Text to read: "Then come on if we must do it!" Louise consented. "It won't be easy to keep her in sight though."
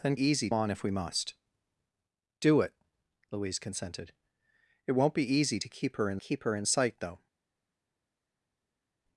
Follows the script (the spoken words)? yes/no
no